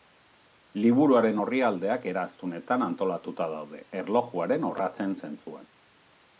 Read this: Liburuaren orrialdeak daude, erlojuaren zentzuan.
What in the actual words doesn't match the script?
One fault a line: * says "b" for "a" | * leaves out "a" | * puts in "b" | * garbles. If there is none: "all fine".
* puts in "eraztunetan antolatuta"
* puts in "orratzen"